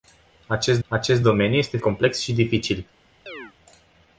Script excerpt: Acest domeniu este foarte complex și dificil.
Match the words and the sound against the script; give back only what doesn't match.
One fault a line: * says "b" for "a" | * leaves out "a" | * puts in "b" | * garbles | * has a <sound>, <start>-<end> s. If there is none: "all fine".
* puts in "acest"
* leaves out "foarte"
* has a chirp, 3.3-3.5 s